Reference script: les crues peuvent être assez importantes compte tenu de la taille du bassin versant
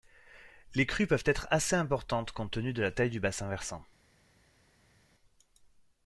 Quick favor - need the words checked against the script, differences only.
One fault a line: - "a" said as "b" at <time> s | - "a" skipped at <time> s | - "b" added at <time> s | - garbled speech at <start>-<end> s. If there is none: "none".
none